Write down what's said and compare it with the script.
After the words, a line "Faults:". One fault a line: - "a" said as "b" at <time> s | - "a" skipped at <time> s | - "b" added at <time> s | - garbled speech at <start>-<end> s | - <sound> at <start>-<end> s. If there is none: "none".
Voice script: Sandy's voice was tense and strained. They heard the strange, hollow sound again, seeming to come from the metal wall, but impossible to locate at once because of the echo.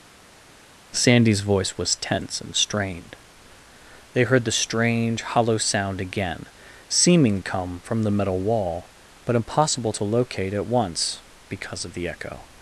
Sandy's voice was tense and strained. They heard the strange, hollow sound again, seeming come from the metal wall, but impossible to locate at once because of the echo.
Faults:
- "to" skipped at 7.4 s